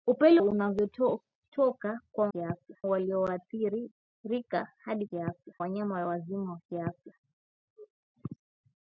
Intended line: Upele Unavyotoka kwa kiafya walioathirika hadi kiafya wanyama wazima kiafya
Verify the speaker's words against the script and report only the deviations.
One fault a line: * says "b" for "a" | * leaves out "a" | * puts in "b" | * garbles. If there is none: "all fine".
all fine